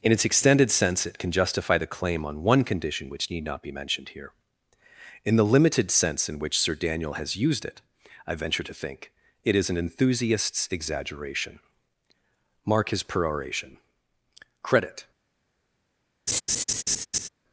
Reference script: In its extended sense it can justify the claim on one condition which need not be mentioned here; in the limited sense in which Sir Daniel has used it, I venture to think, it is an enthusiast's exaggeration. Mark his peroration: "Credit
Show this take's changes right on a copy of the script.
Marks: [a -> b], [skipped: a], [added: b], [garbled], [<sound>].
In its extended sense it can justify the claim on one condition which need not be mentioned here; in the limited sense in which Sir Daniel has used it, I venture to think, it is an enthusiast's exaggeration. Mark his peroration: "Credit [laugh]